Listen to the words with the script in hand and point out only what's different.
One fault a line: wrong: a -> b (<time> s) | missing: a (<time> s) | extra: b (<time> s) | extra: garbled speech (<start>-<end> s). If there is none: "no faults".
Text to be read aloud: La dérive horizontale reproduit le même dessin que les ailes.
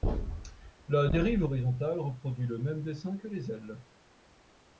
no faults